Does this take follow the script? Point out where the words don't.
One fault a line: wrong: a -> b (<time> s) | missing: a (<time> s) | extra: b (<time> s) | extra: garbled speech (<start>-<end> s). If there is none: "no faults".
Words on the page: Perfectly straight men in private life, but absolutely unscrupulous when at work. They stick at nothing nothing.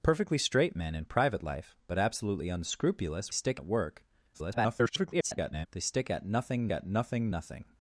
wrong: when -> stick (3.3 s)
extra: garbled speech (4.3-5.7 s)
extra: at nothing (6.7 s)